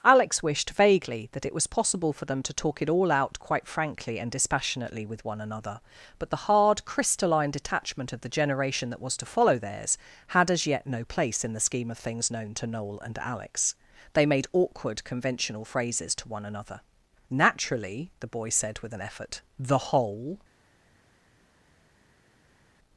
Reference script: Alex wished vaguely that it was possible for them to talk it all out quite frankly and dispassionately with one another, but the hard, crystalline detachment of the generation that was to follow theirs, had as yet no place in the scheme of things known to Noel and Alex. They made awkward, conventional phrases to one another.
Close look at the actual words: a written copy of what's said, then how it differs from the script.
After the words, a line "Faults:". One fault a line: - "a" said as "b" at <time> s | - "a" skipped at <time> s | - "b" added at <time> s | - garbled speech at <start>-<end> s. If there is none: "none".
Alex wished vaguely that it was possible for them to talk it all out quite frankly and dispassionately with one another, but the hard, crystalline detachment of the generation that was to follow theirs, had as yet no place in the scheme of things known to Noel and Alex. They made awkward, conventional phrases to one another. "Naturally," the boy said with an effort, "the whole
Faults:
- "Naturally the boy said with an effort the whole" added at 17.3 s